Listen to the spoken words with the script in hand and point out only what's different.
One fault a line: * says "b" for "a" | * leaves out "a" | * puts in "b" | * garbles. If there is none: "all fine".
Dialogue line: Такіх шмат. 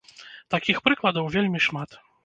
* puts in "прыкладаў вельмі"